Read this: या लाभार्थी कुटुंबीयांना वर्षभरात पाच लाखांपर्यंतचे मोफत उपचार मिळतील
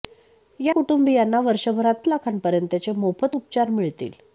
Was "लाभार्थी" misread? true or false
true